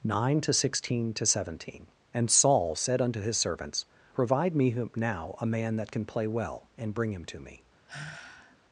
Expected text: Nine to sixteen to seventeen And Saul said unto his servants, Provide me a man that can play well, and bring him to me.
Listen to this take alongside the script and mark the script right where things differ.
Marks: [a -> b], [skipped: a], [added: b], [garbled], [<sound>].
Nine to sixteen to seventeen And Saul said unto his servants, Provide me [added: now] a man that can play well, and bring him to me. [sigh]